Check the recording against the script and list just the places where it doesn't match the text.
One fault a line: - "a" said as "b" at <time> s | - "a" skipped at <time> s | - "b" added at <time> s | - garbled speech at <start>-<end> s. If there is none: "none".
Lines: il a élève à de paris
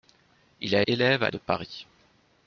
none